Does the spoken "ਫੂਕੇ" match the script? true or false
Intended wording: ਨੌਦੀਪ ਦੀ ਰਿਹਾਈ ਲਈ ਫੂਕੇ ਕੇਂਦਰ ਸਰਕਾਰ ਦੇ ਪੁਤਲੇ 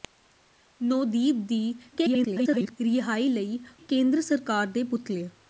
false